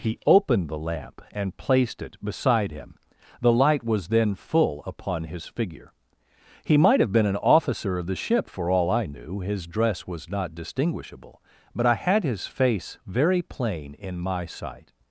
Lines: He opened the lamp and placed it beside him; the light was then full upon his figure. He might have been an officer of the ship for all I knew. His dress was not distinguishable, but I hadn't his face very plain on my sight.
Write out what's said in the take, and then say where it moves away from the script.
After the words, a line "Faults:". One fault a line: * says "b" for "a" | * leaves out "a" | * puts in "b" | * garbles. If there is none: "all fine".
He opened the lamp and placed it beside him; the light was then full upon his figure. He might have been an officer of the ship for all I knew. His dress was not distinguishable, but I had his face very plain in my sight.
Faults:
* says "had" for "hadn't"
* says "in" for "on"